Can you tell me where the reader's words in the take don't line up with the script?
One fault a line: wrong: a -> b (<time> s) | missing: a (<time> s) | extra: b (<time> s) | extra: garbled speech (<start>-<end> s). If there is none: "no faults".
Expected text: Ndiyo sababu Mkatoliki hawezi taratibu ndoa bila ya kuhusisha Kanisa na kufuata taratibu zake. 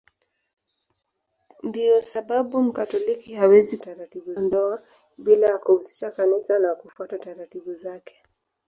no faults